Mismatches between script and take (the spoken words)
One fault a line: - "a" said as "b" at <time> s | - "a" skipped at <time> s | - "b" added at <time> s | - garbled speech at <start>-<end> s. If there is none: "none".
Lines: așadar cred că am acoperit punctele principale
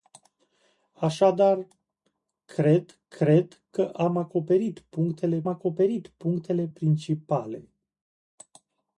- "cred" added at 3.1 s
- "acoperit punctele" added at 5.5 s